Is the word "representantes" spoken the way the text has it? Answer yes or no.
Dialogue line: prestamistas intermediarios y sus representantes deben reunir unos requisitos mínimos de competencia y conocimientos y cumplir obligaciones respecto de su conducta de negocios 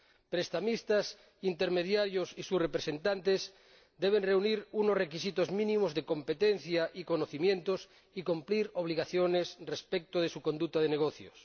yes